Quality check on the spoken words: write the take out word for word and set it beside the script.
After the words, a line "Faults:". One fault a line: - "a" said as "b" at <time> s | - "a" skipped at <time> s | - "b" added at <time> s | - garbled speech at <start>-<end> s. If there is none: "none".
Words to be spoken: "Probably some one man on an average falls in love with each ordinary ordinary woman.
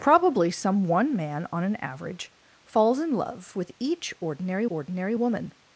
"Probably some one man on an average falls in love with each ordinary ordinary woman.
Faults:
none